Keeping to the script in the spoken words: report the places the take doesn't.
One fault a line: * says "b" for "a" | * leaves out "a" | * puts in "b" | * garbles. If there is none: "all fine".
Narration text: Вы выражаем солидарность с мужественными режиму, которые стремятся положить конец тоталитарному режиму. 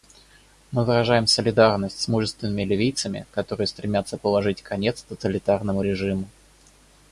* says "Мы" for "Вы"
* says "ливийцами" for "режиму"